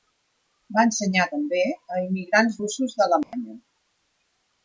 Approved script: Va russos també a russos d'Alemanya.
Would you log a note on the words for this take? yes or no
yes